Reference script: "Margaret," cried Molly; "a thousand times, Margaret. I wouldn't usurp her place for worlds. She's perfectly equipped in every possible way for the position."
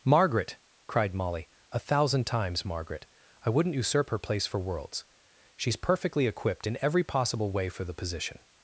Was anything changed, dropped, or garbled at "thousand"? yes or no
no